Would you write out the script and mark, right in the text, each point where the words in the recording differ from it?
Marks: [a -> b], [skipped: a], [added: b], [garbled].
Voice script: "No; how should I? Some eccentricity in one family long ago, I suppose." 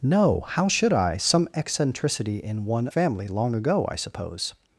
"No; how should I? Some eccentricity in one family long ago, I suppose."